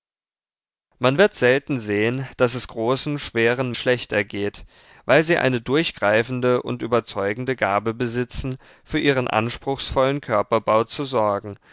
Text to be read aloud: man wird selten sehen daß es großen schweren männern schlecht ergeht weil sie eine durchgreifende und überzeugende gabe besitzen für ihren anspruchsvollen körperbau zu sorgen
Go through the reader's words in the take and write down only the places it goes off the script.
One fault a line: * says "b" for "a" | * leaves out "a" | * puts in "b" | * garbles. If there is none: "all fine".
* leaves out "männern"